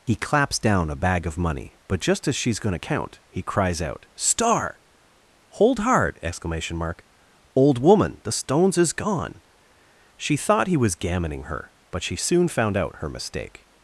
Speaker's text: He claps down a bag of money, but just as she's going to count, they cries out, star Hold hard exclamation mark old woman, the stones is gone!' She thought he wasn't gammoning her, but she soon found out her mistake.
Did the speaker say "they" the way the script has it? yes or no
no